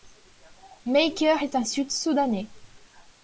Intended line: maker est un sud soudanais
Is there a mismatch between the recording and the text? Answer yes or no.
no